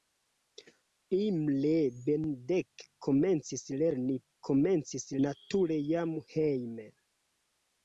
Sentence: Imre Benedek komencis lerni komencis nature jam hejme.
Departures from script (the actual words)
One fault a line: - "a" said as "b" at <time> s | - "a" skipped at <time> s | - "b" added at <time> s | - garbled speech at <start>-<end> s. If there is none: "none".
none